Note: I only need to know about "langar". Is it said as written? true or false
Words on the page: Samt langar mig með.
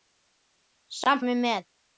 false